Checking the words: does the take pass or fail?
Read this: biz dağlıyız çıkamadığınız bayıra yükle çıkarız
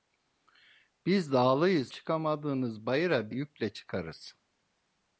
pass